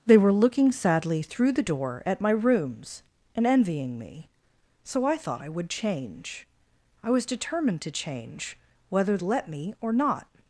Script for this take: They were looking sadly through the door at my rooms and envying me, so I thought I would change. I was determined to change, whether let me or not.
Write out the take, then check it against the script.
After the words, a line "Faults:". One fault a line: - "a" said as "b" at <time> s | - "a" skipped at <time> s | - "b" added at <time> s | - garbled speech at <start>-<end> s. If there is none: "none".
They were looking sadly through the door at my rooms and envying me, so I thought I would change. I was determined to change, whether let me or not.
Faults:
none